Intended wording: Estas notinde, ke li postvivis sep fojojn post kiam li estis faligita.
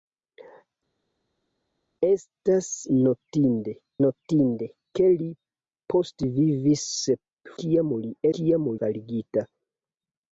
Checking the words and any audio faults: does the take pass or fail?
fail